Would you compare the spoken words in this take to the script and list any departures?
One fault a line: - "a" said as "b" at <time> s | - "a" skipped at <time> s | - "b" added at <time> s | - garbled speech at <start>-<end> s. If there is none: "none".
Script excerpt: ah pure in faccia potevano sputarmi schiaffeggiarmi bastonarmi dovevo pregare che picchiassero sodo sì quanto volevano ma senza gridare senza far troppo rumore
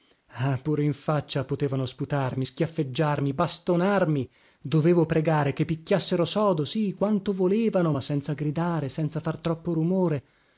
none